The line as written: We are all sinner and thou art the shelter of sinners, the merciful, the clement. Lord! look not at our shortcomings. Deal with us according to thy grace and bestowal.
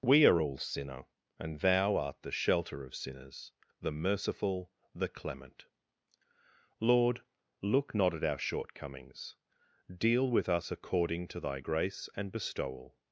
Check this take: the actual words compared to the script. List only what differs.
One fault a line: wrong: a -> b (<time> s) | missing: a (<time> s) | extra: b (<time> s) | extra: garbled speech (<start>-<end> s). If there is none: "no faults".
no faults